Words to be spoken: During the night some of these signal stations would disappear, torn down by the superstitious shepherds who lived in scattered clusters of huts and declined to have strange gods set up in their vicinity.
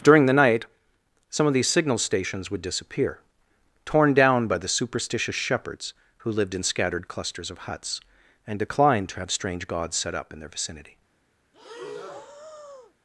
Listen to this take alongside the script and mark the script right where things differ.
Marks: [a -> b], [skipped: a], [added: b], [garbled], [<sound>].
During the night some of these signal stations would disappear, torn down by the superstitious shepherds who lived in scattered clusters of huts and declined to have strange gods set up in their vicinity. [breath]